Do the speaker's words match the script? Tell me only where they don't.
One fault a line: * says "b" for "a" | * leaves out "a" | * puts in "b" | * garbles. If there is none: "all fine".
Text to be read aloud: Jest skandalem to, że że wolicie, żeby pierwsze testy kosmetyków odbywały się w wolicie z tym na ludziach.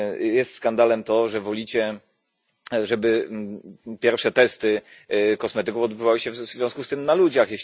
* leaves out "że"
* says "związku" for "wolicie"